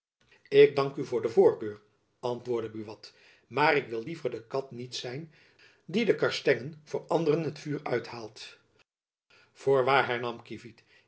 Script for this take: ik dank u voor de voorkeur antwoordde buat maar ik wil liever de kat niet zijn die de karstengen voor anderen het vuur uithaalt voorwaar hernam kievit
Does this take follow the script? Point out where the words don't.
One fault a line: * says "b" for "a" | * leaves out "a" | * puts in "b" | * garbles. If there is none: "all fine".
all fine